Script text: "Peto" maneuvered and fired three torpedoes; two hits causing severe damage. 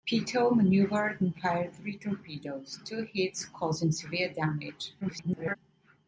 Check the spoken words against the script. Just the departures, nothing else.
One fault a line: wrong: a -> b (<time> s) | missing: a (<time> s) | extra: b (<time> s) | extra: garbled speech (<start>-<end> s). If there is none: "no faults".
extra: garbled speech (5.0-5.6 s)